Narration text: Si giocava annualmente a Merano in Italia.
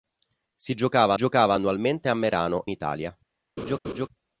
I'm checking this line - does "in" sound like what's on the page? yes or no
no